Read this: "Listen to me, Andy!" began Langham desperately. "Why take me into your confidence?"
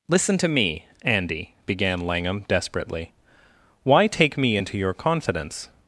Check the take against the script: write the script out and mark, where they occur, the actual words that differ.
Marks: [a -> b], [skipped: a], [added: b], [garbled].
"Listen to me, Andy!" began Langham desperately. "Why take me into your confidence?"